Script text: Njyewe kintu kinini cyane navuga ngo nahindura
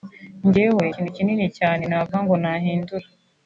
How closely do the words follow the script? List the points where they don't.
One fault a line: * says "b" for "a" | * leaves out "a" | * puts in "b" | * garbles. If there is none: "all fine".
all fine